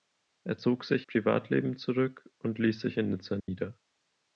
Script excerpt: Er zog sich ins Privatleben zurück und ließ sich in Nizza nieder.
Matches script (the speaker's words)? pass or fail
fail